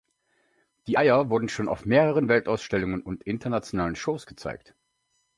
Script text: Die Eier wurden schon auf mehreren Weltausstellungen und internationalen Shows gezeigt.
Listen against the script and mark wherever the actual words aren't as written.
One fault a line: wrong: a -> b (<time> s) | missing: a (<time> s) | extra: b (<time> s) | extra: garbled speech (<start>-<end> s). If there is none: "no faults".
no faults